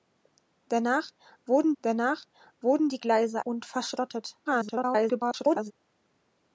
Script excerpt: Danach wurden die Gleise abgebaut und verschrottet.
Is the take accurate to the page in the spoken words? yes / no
no